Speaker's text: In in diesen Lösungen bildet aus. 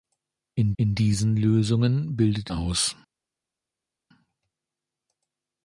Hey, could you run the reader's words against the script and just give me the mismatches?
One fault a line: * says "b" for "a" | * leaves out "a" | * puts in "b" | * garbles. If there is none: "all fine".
all fine